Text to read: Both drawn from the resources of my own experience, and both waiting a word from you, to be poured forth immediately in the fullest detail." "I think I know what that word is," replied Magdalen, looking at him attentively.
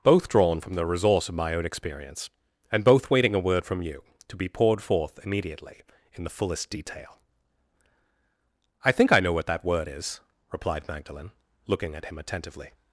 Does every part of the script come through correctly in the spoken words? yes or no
no